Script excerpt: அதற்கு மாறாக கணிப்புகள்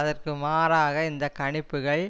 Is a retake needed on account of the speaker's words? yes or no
yes